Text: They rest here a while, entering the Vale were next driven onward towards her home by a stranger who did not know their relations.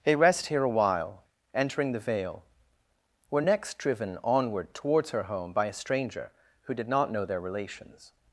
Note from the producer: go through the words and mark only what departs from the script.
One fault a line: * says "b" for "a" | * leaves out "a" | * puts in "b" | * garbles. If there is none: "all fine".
all fine